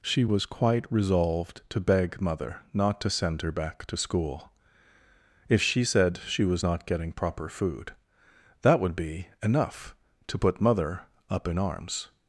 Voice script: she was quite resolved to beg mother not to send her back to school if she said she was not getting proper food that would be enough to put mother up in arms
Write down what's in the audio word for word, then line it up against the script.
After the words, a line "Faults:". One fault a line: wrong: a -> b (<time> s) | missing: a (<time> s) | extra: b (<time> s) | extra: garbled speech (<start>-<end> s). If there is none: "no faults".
she was quite resolved to beg mother not to send her back to school if she said she was not getting proper food that would be enough to put mother up in arms
Faults:
no faults